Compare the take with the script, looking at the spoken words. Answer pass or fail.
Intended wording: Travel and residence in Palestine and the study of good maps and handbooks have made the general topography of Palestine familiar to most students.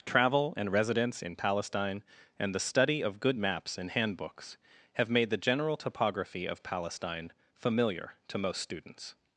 pass